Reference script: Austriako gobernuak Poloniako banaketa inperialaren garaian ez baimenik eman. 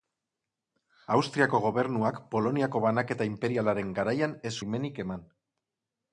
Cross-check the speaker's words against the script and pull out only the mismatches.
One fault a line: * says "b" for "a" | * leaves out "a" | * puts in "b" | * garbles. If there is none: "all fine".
all fine